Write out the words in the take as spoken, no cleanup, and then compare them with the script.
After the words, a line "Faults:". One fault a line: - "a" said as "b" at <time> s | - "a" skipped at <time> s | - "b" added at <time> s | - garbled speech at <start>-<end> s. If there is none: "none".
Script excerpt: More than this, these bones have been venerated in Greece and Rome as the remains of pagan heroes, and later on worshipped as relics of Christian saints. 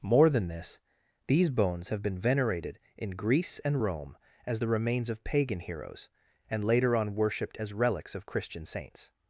More than this, these bones have been venerated in Greece and Rome as the remains of pagan heroes, and later on worshipped as relics of Christian saints.
Faults:
none